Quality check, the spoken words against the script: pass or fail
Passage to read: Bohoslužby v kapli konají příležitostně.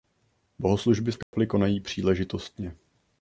pass